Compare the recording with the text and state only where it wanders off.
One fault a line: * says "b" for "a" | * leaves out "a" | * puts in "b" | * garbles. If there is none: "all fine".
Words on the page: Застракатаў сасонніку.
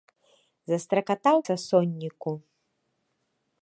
all fine